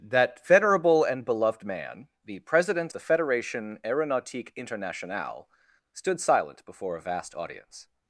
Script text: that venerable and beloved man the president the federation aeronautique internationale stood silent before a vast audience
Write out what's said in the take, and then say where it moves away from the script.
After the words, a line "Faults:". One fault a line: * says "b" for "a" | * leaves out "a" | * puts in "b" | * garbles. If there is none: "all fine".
that venerable and beloved man the president the federation aeronautique internationale stood silent before a vast audience
Faults:
all fine